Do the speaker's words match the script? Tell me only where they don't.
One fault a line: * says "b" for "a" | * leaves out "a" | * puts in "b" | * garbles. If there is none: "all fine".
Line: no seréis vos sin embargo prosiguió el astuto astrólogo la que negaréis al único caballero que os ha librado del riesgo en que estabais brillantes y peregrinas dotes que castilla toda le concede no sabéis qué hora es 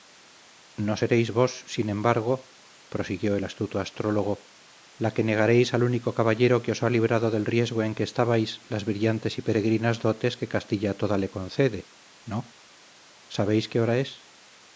* puts in "las"